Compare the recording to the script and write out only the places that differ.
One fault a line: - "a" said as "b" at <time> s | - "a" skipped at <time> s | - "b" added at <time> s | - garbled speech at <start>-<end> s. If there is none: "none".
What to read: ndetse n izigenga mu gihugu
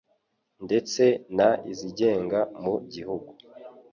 none